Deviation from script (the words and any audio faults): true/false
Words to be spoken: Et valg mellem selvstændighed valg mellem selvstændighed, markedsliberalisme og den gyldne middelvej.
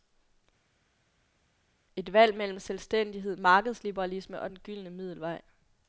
true